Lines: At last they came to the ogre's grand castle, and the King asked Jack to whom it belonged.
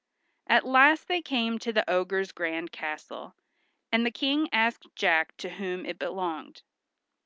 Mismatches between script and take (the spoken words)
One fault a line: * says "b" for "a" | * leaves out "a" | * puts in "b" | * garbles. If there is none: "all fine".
all fine